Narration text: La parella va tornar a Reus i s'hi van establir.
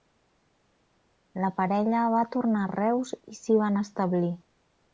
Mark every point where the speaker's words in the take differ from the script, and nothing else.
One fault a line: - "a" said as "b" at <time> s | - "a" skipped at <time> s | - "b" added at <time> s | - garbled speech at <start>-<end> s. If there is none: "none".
none